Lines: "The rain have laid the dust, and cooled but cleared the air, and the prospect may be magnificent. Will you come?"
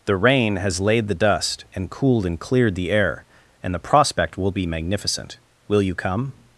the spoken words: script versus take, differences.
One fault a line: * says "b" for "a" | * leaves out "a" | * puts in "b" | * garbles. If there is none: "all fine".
* says "has" for "have"
* says "and" for "but"
* says "will" for "may"